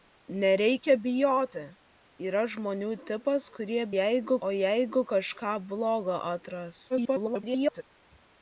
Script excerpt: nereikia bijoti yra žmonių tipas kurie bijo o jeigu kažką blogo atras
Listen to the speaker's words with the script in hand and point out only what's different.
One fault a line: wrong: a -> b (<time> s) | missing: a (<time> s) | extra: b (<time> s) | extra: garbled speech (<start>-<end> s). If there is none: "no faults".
wrong: bijo -> jeigu (3.9 s)
extra: garbled speech (6.9-7.8 s)